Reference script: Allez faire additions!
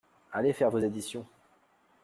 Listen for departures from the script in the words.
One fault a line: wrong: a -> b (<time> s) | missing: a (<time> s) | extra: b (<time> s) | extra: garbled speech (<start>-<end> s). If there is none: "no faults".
extra: vos (0.7 s)